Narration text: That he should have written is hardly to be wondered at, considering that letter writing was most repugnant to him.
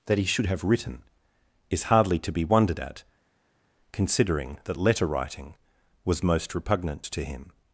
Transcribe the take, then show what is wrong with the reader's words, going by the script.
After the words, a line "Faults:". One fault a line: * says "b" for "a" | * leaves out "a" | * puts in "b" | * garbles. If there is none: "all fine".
That he should have written is hardly to be wondered at, considering that letter writing was most repugnant to him.
Faults:
all fine